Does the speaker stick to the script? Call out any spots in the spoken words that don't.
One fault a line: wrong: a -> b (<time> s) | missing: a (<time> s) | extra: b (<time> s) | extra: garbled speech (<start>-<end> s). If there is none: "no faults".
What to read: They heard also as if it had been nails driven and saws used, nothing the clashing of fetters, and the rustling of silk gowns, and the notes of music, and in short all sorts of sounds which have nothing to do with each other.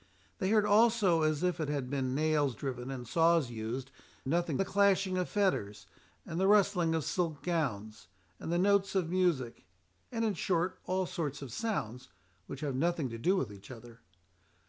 no faults